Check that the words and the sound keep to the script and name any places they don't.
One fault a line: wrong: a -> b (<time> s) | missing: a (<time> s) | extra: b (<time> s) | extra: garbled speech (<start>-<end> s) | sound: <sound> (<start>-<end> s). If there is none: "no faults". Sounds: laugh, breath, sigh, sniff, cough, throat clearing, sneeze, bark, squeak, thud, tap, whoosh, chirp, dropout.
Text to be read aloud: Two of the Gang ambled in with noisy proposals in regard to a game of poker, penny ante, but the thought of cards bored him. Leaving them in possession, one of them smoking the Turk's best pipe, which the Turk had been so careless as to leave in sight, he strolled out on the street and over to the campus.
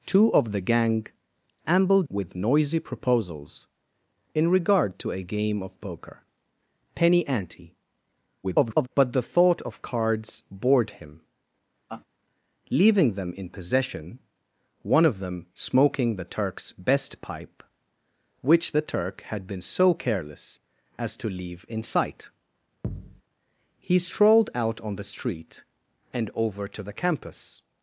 missing: in (2.1 s)
extra: garbled speech (8.4-8.9 s)
sound: laugh (11.9-12.1 s)
sound: thud (22.8-23.2 s)